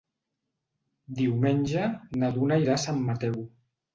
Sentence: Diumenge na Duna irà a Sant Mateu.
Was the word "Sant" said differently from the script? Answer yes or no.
no